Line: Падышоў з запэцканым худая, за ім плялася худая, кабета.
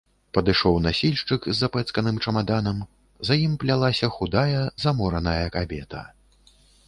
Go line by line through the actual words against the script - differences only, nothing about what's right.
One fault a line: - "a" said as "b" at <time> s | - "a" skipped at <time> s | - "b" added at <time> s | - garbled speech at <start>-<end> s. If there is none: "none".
- "насільшчык" added at 0.8 s
- "худая" said as "чамаданам" at 2.3 s
- "замораная" added at 4.8 s